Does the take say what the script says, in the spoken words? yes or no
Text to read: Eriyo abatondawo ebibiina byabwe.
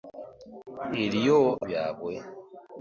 no